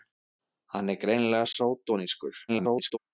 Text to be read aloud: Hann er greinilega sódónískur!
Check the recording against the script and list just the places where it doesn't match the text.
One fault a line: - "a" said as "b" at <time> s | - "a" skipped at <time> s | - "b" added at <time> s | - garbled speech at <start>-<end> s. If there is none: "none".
- garbled speech at 2.5-3.0 s